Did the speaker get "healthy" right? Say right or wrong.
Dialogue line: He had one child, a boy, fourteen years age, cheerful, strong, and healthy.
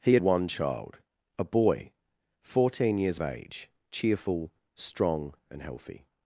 right